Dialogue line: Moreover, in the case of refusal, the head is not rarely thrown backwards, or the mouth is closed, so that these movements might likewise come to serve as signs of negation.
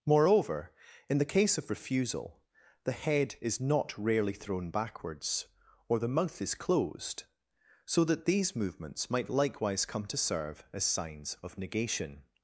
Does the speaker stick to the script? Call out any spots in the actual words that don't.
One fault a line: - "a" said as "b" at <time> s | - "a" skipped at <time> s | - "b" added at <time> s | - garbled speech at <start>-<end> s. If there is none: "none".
none